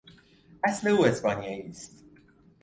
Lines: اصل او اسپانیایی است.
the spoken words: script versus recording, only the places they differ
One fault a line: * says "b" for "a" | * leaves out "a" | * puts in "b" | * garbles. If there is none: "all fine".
all fine